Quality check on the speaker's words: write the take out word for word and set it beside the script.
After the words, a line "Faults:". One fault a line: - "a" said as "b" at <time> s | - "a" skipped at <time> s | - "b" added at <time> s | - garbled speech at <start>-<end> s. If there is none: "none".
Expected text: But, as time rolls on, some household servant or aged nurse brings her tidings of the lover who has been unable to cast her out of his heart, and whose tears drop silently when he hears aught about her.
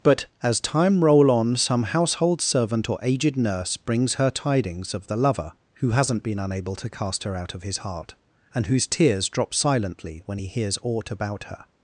But, as time roll on, some household servant or aged nurse brings her tidings of the lover who hasn't been unable to cast her out of his heart, and whose tears drop silently when he hears aught about her.
Faults:
- "rolls" said as "roll" at 1.0 s
- "has" said as "hasn't" at 5.9 s